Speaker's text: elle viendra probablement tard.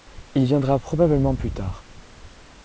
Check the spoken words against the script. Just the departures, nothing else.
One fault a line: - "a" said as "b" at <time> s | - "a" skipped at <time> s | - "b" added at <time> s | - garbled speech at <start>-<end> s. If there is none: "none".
- "elle" said as "il" at 0.3 s
- "plus" added at 1.3 s